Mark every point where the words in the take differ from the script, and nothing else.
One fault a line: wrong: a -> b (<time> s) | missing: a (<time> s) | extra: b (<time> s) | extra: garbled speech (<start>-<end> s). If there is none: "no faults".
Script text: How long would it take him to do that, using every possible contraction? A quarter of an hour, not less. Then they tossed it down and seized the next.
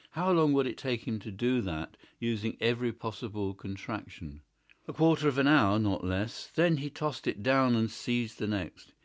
wrong: they -> he (6.8 s)